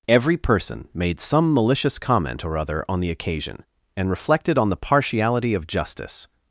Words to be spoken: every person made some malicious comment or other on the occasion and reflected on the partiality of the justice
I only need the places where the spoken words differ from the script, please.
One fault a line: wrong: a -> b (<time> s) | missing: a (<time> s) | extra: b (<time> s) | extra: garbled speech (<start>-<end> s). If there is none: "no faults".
missing: the (5.7 s)